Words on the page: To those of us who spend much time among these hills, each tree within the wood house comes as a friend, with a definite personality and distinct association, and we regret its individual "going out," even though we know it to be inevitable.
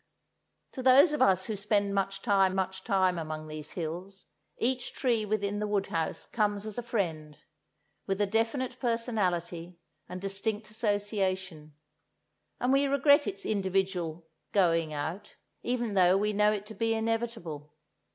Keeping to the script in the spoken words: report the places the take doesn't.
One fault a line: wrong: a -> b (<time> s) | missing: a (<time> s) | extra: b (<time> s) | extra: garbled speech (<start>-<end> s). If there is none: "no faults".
extra: much time (2.5 s)